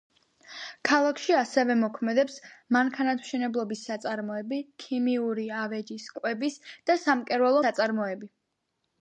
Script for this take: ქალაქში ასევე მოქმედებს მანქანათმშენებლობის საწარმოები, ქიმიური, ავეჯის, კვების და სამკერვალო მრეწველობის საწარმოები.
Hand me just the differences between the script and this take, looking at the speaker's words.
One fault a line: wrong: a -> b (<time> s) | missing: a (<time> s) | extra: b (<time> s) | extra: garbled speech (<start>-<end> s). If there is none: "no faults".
missing: მრეწველობის (7.6 s)